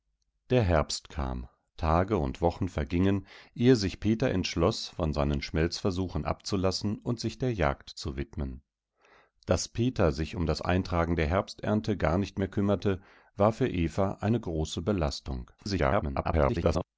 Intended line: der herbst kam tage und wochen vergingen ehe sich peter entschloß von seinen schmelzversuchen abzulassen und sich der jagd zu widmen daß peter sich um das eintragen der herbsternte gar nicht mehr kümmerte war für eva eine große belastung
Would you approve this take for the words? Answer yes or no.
no